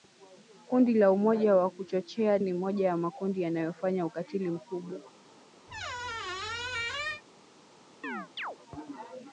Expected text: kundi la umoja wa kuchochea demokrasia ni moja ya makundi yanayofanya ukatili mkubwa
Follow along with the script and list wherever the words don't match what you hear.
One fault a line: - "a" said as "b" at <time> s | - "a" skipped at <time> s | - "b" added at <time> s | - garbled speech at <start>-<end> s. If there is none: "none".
- "demokrasia" skipped at 2.4 s